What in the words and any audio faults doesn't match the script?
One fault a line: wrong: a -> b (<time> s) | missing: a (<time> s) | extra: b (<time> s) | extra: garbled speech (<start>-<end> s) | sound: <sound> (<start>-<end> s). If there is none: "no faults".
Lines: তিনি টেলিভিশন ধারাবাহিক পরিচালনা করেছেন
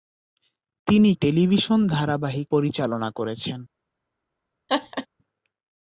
sound: laugh (4.7-5.1 s)